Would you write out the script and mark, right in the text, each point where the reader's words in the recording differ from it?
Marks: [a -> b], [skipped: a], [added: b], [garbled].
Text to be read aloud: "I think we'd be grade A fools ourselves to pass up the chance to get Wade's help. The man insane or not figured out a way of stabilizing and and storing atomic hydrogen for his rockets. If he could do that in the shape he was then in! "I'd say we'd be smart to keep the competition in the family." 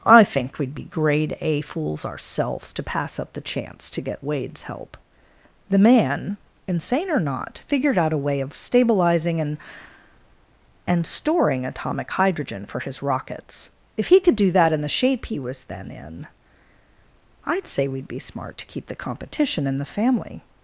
"I think we'd be grade A fools ourselves to pass up the chance to get Wade's help. The man insane or not figured out a way of stabilizing and and storing atomic hydrogen for his rockets. If he could do that in the shape he was then in! "I'd say we'd be smart to keep the competition in the family."